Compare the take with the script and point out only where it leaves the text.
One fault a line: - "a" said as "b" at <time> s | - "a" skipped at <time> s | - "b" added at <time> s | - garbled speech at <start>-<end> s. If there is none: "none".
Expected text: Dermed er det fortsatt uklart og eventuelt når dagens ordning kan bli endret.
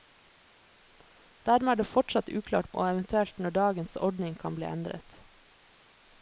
none